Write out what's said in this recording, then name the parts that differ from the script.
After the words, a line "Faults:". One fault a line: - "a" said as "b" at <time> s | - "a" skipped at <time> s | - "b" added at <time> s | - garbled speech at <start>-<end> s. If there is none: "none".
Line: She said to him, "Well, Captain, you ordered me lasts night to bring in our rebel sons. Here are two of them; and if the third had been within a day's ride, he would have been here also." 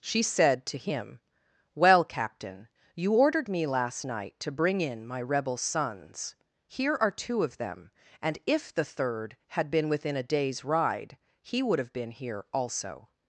She said to him, "Well, Captain, you ordered me last night to bring in my rebel sons. Here are two of them; and if the third had been within a day's ride, he would have been here also."
Faults:
- "lasts" said as "last" at 3.7 s
- "our" said as "my" at 5.1 s